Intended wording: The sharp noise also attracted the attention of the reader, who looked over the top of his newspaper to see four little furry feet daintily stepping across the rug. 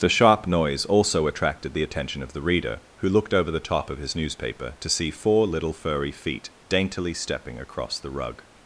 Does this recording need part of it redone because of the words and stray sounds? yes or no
no